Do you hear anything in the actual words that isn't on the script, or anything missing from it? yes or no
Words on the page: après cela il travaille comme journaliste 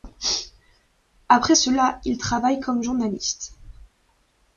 no